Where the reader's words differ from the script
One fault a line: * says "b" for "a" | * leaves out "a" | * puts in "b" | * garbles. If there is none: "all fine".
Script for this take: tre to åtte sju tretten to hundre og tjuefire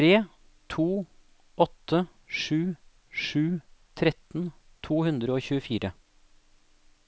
* puts in "sju"